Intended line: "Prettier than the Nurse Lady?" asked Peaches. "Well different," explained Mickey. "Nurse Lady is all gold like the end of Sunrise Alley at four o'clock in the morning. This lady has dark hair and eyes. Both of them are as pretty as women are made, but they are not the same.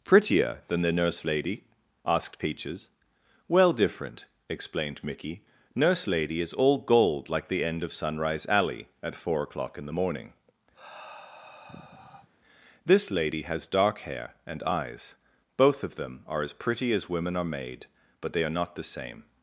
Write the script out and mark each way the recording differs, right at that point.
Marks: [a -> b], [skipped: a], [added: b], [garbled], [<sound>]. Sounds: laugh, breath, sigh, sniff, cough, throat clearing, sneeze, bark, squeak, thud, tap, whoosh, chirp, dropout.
"Prettier than the Nurse Lady?" asked Peaches. "Well different," explained Mickey. "Nurse Lady is all gold like the end of Sunrise Alley at four o'clock in the morning. [sigh] This lady has dark hair and eyes. Both of them are as pretty as women are made, but they are not the same.